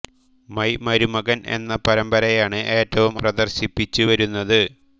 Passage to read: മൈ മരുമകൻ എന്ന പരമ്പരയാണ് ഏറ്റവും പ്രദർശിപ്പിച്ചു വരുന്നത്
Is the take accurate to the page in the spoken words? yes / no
yes